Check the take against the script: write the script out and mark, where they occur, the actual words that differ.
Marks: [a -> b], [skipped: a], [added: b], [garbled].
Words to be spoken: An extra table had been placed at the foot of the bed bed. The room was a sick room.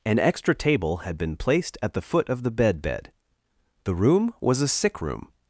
An extra table had been placed at the foot of the bed bed. The room was a sick room.